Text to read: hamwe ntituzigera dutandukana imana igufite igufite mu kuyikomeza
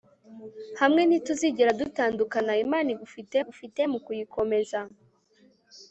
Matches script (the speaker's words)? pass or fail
pass